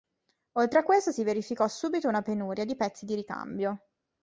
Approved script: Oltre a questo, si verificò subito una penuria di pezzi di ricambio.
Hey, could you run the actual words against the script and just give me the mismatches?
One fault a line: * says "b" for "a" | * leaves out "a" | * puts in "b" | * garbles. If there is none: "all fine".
all fine